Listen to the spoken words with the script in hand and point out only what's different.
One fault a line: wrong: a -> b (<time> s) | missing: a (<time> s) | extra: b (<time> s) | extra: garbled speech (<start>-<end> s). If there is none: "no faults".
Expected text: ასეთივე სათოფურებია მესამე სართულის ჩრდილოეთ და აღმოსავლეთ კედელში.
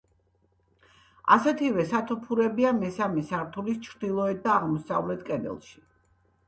no faults